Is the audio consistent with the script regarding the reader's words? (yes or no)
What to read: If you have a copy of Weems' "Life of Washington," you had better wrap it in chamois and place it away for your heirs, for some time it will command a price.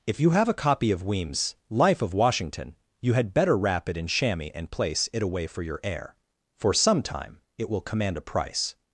no